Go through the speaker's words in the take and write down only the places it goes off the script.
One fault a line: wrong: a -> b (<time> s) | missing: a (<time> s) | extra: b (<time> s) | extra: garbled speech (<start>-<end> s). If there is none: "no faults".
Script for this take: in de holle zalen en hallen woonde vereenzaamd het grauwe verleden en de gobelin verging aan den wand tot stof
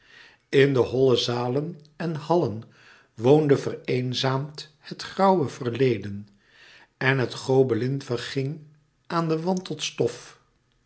wrong: de -> het (7.2 s)